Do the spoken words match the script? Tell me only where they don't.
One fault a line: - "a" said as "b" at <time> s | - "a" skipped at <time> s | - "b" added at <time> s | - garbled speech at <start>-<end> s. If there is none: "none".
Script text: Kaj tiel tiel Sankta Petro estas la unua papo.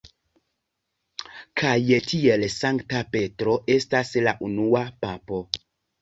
- "tiel" skipped at 2.4 s